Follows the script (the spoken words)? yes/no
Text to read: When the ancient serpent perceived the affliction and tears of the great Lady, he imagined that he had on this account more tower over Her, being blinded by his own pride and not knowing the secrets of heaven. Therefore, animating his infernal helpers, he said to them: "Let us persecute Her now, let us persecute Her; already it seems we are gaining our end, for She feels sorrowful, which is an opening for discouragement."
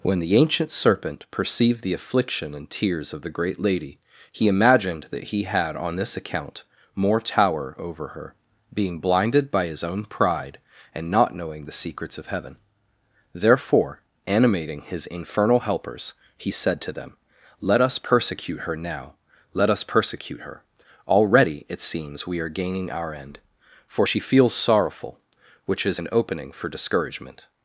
yes